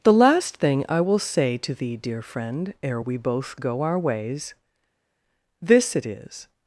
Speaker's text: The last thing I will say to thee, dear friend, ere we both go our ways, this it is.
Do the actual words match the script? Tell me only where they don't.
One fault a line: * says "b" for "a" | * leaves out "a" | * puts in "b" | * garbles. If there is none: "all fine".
all fine